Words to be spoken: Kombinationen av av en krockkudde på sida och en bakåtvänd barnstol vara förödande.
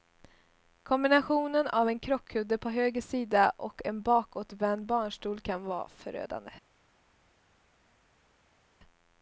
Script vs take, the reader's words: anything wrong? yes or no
yes